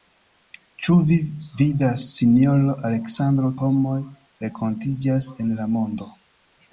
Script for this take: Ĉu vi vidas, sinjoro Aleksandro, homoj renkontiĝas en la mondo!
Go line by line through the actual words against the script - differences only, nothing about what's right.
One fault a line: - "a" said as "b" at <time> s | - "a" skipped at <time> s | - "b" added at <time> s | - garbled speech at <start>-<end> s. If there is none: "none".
none